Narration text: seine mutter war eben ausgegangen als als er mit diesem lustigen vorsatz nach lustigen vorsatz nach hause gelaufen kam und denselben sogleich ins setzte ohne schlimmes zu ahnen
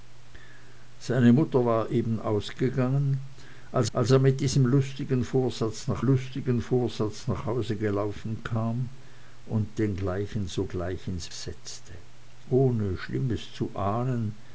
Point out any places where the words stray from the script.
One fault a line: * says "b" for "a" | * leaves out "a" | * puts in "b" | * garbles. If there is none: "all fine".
all fine